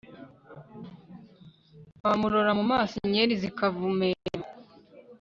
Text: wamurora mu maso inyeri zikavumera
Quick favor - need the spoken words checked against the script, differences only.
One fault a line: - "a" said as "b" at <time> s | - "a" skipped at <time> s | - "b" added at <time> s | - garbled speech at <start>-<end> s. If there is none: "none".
none